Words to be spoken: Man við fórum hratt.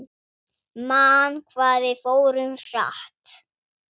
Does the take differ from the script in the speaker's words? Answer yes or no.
yes